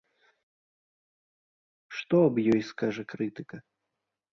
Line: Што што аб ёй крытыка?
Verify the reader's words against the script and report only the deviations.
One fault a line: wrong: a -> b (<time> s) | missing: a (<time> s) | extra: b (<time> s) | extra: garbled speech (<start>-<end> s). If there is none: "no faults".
missing: што (2.1 s)
extra: скажа (2.8 s)